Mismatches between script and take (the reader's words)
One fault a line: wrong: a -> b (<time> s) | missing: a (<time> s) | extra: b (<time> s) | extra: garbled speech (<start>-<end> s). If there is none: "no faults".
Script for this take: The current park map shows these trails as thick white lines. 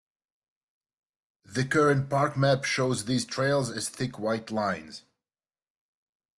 no faults